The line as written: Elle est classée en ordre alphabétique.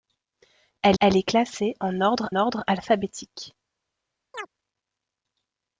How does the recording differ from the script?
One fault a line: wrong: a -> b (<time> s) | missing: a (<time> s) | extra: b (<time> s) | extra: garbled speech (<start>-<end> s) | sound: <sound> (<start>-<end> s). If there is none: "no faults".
extra: elle (1.0 s)
extra: ordre (2.3 s)
sound: chirp (4.3-4.5 s)